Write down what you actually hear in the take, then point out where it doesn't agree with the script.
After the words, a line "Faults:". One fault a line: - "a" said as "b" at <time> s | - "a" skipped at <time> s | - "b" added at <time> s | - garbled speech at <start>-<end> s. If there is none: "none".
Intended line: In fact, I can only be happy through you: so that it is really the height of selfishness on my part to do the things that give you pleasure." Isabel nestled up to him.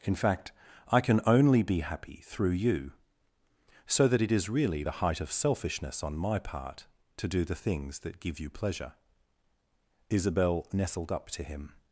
In fact, I can only be happy through you: so that it is really the height of selfishness on my part to do the things that give you pleasure." Isabel nestled up to him.
Faults:
none